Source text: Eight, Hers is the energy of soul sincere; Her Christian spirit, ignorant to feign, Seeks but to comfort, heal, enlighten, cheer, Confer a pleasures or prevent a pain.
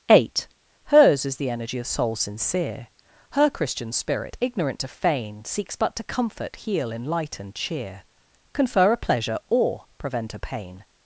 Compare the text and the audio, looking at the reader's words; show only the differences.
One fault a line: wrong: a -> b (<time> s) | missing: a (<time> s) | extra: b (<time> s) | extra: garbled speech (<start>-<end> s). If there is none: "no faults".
wrong: pleasures -> pleasure (9.0 s)